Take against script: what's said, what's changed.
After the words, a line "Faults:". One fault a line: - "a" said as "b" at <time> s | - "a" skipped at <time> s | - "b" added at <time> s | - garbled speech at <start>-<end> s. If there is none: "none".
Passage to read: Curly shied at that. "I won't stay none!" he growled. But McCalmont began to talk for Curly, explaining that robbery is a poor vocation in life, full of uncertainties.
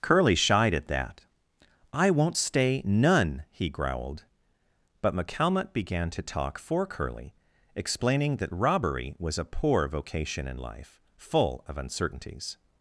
Curly shied at that. "I won't stay none!" he growled. But McCalmont began to talk for Curly, explaining that robbery was a poor vocation in life, full of uncertainties.
Faults:
- "is" said as "was" at 9.2 s